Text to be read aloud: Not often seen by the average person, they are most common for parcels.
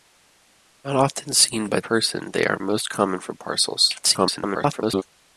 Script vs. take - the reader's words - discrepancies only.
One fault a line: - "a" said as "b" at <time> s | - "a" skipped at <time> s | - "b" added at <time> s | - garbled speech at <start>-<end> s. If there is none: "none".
- "the average" skipped at 1.8 s
- garbled speech at 4.0-5.0 s